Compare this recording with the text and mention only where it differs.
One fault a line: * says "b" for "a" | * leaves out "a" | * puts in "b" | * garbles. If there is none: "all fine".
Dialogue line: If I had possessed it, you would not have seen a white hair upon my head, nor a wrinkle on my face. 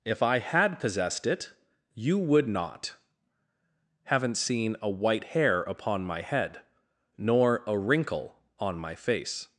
* says "haven't" for "have"